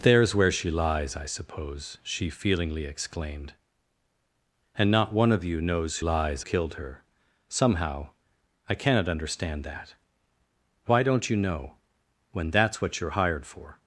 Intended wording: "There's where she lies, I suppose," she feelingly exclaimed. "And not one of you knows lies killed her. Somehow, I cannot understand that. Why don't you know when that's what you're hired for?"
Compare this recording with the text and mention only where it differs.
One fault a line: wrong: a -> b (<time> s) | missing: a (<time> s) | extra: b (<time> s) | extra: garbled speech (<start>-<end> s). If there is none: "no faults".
no faults